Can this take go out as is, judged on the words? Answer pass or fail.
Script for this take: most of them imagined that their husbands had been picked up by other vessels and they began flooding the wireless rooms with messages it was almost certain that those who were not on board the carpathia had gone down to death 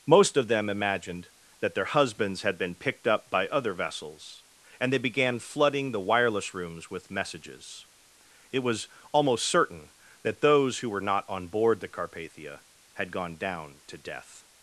pass